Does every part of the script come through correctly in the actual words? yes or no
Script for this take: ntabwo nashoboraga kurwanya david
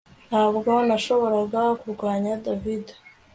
yes